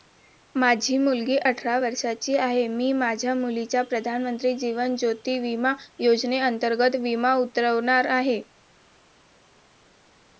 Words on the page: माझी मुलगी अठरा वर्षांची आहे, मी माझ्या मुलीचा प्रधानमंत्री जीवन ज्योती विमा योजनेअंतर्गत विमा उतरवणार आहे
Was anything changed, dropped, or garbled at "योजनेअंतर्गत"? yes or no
no